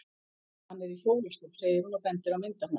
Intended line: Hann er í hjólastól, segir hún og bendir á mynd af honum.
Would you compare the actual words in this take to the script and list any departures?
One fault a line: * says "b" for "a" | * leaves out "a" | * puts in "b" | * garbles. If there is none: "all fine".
all fine